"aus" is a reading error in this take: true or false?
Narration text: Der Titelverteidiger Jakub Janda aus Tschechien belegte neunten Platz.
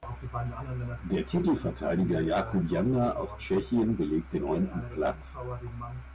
false